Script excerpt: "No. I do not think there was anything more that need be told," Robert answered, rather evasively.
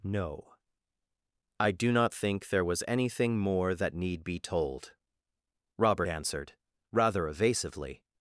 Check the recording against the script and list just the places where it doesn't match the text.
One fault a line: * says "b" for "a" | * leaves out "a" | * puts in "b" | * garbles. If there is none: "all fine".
all fine